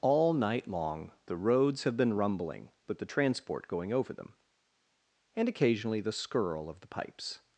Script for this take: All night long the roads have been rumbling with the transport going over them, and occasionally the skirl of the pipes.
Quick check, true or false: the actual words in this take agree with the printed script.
true